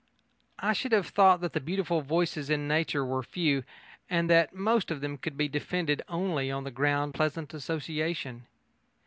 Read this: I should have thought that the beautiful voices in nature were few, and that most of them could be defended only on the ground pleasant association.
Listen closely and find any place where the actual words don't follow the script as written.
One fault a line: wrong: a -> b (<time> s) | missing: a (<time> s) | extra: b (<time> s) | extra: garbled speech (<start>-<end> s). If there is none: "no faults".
no faults